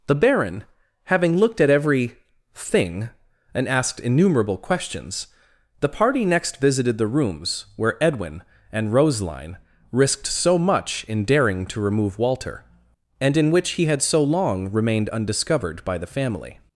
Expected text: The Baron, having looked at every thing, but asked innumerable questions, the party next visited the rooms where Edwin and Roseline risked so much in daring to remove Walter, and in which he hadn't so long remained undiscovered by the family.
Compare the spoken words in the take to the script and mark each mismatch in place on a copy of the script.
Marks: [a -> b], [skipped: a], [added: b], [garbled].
The Baron, having looked at every thing, [but -> and] asked innumerable questions, the party next visited the rooms where Edwin and Roseline risked so much in daring to remove Walter, and in which he [hadn't -> had] so long remained undiscovered by the family.